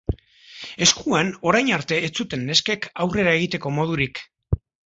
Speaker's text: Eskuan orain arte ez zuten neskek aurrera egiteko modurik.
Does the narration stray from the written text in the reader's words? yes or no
no